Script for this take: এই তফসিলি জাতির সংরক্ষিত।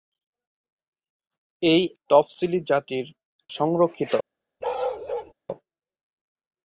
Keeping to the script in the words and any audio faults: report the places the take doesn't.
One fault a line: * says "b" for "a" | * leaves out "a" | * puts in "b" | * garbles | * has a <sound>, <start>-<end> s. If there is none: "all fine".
* has a bark, 4.6-5.3 s